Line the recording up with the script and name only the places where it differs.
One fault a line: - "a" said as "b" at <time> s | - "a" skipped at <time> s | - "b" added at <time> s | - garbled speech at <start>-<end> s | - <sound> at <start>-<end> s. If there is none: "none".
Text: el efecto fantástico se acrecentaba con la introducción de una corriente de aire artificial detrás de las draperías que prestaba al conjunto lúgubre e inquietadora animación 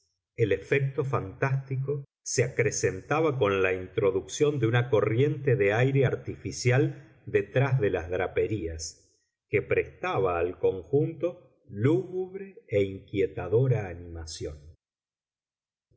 none